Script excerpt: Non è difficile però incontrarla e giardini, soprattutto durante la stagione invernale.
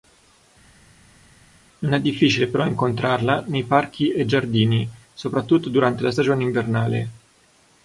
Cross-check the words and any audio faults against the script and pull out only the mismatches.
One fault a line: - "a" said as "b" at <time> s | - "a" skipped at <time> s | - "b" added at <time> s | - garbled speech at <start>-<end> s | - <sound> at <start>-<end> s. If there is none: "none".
- "nei parchi" added at 3.5 s